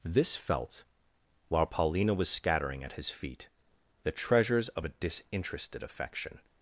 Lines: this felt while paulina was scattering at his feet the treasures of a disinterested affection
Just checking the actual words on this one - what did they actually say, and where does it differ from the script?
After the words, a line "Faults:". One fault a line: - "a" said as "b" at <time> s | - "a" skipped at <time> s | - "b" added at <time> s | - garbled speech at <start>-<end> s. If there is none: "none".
this felt while paulina was scattering at his feet the treasures of a disinterested affection
Faults:
none